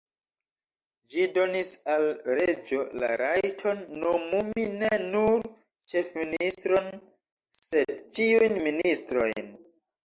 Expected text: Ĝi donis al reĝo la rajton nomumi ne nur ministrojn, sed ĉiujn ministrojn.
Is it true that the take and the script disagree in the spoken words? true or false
true